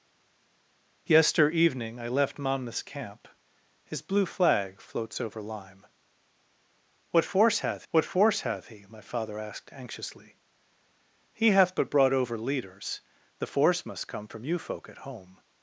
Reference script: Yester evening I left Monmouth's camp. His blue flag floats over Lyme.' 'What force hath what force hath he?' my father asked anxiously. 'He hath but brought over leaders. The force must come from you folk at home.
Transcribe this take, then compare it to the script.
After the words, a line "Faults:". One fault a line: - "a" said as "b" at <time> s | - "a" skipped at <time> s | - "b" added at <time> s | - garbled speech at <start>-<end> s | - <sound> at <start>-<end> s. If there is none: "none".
Yester evening I left Monmouth's camp. His blue flag floats over Lyme.' 'What force hath what force hath he?' my father asked anxiously. 'He hath but brought over leaders. The force must come from you folk at home.
Faults:
none